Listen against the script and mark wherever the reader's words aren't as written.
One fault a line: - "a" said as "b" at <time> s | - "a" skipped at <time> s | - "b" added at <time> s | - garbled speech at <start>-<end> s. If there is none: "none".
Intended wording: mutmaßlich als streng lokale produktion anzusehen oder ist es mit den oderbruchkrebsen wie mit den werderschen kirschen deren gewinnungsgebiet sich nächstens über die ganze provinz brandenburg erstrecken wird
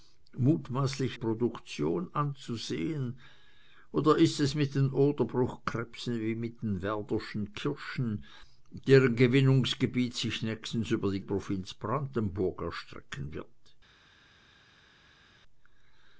- "als streng lokale" skipped at 1.2 s
- "ganze" skipped at 11.2 s